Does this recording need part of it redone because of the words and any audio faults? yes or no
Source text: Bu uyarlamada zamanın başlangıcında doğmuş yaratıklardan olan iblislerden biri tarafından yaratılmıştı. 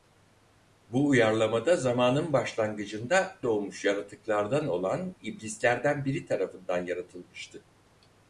no